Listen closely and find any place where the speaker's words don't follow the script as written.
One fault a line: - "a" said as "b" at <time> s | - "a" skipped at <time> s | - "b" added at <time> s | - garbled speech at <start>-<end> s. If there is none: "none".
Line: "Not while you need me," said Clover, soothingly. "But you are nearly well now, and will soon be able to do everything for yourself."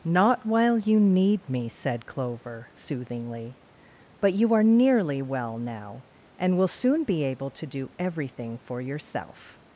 none